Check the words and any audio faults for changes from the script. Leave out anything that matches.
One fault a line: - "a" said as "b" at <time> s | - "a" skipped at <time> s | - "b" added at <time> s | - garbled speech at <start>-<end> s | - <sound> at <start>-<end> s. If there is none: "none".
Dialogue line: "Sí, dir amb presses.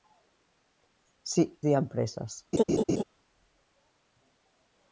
- laugh at 2.5-3.0 s